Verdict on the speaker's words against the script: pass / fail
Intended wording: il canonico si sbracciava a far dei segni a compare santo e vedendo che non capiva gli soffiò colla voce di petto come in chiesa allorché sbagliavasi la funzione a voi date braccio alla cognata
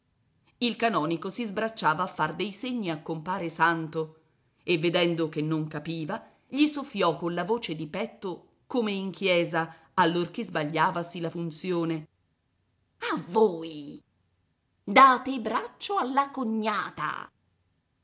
pass